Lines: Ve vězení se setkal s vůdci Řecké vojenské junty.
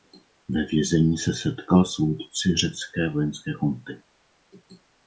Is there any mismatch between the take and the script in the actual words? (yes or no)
no